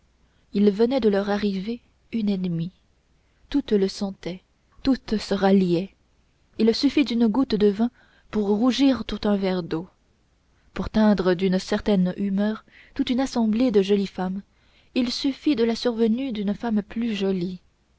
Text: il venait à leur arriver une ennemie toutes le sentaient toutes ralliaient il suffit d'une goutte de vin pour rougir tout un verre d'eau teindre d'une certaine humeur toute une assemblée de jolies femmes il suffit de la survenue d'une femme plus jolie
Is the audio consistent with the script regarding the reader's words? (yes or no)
no